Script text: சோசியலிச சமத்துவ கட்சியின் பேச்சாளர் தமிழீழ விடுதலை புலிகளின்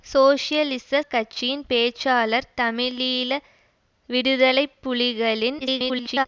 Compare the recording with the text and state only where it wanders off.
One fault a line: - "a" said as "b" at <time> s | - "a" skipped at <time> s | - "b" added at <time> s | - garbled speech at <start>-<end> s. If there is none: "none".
- "சமத்துவ" skipped at 1.0 s
- garbled speech at 5.6-6.3 s